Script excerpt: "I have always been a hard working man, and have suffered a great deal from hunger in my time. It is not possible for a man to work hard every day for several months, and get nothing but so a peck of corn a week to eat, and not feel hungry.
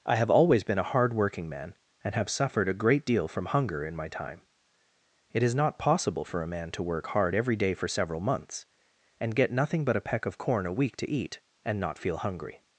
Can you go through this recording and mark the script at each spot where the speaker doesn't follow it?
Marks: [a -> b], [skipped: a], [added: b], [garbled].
"I have always been a hard working man, and have suffered a great deal from hunger in my time. It is not possible for a man to work hard every day for several months, and get nothing but [skipped: so] a peck of corn a week to eat, and not feel hungry.